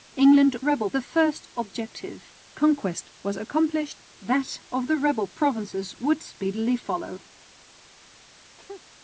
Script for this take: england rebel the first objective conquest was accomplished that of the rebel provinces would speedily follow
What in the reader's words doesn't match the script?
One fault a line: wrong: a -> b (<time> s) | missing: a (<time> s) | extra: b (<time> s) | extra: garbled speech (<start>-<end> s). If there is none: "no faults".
no faults